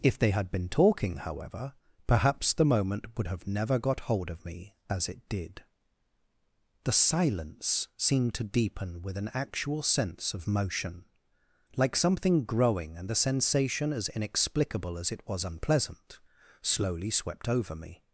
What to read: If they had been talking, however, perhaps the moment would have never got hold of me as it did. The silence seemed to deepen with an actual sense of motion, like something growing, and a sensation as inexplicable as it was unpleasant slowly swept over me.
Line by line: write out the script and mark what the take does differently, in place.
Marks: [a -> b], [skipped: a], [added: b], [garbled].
If they had been talking, however, perhaps the moment would have never got hold of me as it did. The silence seemed to deepen with an actual sense of motion, like something growing, and [a -> the] sensation as inexplicable as it was unpleasant slowly swept over me.